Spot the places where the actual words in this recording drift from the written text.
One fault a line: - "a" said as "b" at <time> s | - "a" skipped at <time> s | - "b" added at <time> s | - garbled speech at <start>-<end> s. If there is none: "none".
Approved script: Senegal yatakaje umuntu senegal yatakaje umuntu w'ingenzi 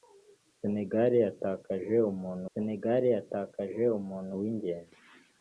none